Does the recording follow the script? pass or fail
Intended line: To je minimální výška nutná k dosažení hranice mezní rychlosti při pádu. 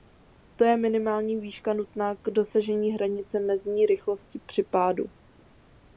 pass